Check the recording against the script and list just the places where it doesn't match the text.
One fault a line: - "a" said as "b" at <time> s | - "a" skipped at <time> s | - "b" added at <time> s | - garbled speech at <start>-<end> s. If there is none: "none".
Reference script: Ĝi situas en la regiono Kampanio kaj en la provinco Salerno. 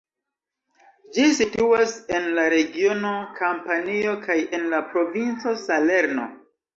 none